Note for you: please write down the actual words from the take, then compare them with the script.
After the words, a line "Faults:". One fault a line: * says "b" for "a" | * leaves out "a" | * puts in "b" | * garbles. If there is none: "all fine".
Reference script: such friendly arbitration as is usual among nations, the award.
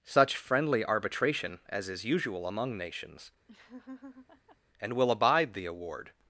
such friendly arbitration as is usual among nations, and will abide the award.
Faults:
* puts in "and will abide"